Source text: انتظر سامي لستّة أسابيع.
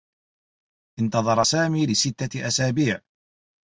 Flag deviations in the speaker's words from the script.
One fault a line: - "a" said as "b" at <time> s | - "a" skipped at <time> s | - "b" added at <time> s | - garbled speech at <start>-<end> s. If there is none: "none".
none